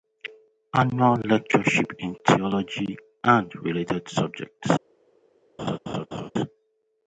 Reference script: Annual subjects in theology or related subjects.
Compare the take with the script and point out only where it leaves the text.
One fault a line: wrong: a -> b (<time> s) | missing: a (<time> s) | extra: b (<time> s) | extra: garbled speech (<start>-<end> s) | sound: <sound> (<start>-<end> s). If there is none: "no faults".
wrong: subjects -> lectureship (1.2 s)
wrong: or -> and (3.2 s)
sound: laugh (5.6-6.3 s)